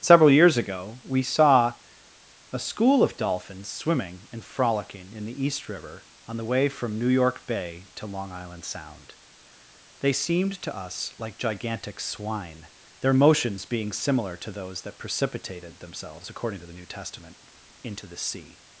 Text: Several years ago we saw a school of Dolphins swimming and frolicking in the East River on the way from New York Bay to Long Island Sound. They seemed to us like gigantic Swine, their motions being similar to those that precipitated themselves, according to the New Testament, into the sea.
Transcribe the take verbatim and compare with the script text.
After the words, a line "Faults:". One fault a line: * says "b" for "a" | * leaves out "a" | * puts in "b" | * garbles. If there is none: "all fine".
Several years ago we saw a school of Dolphins swimming and frolicking in the East River on the way from New York Bay to Long Island Sound. They seemed to us like gigantic Swine, their motions being similar to those that precipitated themselves, according to the New Testament, into the sea.
Faults:
all fine